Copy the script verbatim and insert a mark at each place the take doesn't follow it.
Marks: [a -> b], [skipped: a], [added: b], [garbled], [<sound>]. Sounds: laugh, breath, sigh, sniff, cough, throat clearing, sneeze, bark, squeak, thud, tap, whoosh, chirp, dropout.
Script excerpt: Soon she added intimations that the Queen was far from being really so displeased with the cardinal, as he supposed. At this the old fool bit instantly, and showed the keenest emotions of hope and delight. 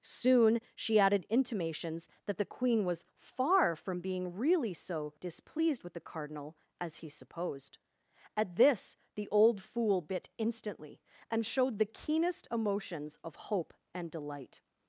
Soon she added intimations that the Queen was far from being really so displeased with the cardinal, as he supposed. At this the old fool bit instantly, and showed the keenest emotions of hope and delight.